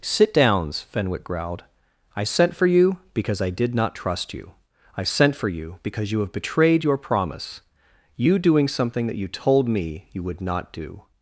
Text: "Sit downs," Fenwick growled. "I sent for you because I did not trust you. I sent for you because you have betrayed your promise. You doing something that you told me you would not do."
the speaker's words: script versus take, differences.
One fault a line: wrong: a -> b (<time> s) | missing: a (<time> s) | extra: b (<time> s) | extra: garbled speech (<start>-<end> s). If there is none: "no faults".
no faults